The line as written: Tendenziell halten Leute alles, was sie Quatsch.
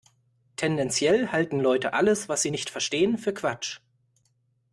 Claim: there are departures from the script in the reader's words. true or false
true